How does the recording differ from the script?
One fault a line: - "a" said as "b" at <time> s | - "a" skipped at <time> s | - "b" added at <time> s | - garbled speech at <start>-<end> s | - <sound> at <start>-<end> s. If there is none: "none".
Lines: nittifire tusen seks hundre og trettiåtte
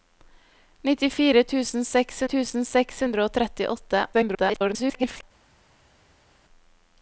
- "tusen seks" added at 2.3 s
- garbled speech at 4.1-5.2 s